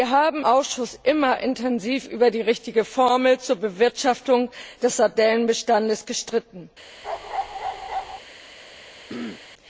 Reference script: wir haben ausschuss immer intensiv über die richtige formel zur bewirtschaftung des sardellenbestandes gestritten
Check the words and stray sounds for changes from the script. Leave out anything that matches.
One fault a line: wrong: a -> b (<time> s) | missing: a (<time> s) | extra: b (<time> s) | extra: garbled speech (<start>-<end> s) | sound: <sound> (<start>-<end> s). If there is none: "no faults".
sound: bark (7.0-8.2 s)
sound: throat clearing (9.1-9.4 s)